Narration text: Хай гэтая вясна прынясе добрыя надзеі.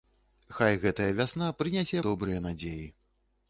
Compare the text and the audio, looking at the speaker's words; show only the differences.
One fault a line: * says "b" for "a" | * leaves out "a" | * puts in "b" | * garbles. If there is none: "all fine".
all fine